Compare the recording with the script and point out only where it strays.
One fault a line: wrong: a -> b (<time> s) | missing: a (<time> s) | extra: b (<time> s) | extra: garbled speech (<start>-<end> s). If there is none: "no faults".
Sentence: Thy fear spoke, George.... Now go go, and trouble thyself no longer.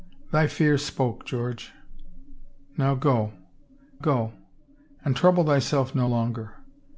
no faults